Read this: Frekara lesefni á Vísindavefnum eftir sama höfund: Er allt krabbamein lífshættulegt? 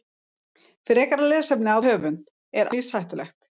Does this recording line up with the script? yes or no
no